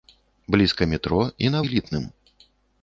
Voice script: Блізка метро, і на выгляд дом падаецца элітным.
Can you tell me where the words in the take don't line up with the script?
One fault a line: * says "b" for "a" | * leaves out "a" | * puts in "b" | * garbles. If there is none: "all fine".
* leaves out "выгляд дом падаецца"